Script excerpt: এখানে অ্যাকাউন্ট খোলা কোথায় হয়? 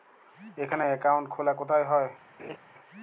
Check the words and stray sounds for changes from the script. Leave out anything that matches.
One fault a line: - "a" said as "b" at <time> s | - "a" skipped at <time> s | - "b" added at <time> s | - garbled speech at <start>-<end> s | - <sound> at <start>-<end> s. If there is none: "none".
- laugh at 2.4-2.6 s